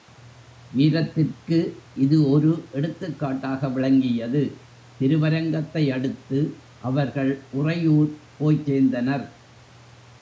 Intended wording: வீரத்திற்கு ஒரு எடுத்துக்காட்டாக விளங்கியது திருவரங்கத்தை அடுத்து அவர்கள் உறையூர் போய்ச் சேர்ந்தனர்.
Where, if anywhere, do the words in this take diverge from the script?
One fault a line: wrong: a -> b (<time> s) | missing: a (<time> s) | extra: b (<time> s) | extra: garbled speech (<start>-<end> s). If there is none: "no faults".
extra: இது (1.9 s)